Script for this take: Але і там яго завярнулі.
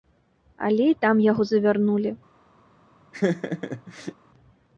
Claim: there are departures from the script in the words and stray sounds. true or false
true